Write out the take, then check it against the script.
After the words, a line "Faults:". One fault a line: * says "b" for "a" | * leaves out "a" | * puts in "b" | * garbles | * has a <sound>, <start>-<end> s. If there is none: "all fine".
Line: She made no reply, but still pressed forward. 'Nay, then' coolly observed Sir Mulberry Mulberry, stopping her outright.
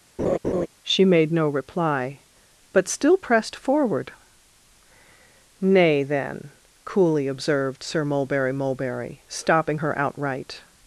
She made no reply, but still pressed forward. 'Nay, then' coolly observed Sir Mulberry Mulberry, stopping her outright.
Faults:
* has a laugh, 0.2-0.7 s